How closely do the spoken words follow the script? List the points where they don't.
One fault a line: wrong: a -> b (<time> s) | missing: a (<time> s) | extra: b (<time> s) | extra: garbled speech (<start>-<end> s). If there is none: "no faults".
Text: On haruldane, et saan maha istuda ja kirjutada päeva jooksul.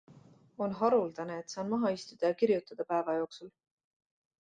no faults